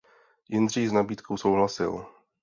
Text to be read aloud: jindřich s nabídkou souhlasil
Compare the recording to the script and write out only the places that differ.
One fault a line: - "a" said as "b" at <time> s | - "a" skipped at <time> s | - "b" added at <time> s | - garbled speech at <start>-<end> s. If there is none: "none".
none